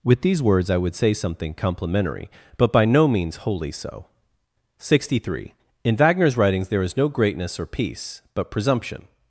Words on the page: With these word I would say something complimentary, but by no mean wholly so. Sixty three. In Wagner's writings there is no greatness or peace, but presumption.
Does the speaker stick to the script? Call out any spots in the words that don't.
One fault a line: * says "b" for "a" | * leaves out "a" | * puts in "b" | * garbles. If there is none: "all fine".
* says "words" for "word"
* says "means" for "mean"